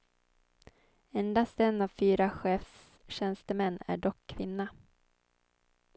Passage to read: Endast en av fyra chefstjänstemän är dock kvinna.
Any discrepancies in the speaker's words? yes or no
no